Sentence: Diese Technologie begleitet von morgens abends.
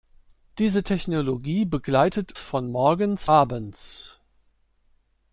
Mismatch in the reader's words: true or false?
false